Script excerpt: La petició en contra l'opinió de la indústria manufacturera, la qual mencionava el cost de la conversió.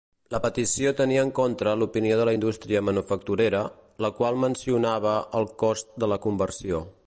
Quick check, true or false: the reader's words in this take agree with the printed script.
false